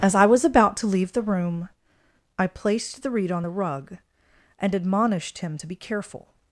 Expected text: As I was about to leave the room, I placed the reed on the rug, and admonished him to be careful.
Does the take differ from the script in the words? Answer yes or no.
no